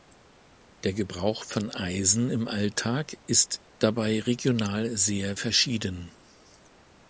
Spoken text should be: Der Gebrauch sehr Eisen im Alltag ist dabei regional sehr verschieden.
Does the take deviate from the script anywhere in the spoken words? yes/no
yes